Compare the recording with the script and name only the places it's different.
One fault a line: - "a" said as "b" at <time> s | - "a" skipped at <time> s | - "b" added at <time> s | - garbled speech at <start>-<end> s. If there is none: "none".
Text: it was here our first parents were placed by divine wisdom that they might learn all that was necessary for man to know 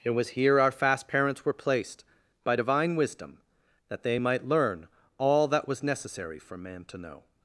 - "first" said as "fast" at 0.7 s